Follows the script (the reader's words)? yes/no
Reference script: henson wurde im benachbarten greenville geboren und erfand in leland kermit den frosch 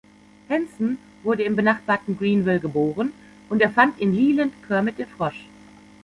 yes